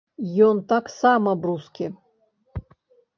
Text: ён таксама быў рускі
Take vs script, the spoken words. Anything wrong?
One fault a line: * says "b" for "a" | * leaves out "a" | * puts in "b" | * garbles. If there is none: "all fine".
* leaves out "быў"